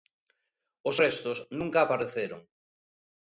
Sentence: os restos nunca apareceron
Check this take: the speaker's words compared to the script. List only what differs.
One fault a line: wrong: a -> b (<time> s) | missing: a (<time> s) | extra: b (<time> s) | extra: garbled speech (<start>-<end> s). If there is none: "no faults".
no faults